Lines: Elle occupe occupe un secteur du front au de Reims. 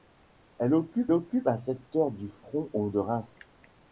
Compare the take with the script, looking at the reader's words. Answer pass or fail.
pass